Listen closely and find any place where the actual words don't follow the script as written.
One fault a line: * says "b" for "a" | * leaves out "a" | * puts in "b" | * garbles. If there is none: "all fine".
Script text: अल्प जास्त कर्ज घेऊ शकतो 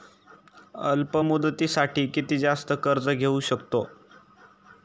* puts in "मुदतीसाठी किती"